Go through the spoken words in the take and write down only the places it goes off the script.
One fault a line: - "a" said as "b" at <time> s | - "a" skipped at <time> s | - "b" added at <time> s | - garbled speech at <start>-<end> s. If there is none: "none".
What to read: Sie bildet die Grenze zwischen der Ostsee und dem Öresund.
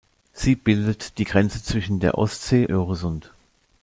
- "und dem" skipped at 2.7 s